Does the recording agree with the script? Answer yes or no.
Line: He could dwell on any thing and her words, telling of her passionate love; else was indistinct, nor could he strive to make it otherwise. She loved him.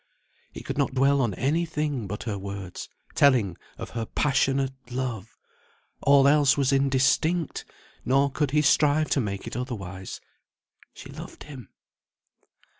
no